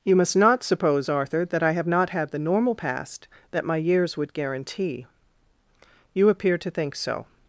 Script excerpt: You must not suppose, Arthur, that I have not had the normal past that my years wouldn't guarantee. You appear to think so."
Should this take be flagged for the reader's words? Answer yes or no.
yes